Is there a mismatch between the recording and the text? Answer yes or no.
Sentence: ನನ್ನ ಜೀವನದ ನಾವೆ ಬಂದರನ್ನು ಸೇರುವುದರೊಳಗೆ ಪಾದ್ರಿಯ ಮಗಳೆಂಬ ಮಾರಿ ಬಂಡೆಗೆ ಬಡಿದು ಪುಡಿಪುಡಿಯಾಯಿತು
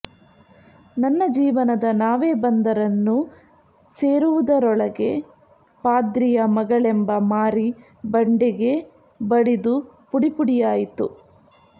no